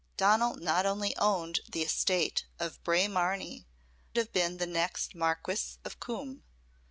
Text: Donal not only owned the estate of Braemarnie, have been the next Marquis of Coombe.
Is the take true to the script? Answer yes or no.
yes